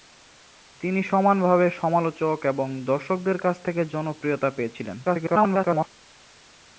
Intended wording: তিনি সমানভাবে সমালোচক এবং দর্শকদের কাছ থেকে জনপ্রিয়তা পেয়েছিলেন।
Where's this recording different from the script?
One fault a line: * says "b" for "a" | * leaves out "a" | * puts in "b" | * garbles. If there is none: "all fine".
* garbles